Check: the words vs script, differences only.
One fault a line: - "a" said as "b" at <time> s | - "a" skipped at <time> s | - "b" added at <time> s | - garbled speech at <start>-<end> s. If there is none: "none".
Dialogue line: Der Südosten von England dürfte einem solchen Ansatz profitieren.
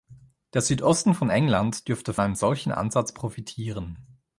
none